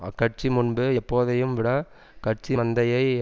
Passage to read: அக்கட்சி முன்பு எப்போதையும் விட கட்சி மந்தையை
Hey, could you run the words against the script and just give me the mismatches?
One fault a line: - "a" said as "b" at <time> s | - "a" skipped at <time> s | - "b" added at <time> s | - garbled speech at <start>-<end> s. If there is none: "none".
none